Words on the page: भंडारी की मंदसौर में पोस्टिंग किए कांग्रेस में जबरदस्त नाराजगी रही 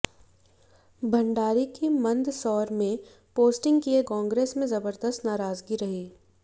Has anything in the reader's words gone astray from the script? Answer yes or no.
no